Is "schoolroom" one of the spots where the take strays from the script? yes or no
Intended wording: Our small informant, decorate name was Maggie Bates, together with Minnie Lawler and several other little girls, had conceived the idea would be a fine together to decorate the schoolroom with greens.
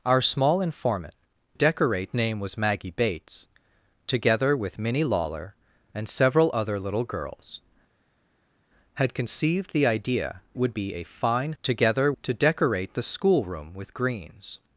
no